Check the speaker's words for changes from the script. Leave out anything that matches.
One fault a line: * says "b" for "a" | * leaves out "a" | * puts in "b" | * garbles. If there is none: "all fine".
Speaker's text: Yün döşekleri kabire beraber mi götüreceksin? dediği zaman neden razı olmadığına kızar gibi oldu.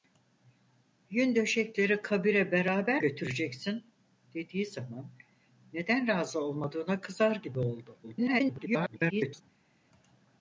* leaves out "mi"
* garbles